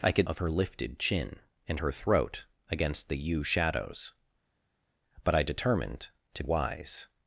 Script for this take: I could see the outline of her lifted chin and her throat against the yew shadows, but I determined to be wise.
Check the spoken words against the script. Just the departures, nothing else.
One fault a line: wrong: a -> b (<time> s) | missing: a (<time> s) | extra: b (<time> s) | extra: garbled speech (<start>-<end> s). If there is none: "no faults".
missing: see the outline (0.3 s)
missing: be (6.4 s)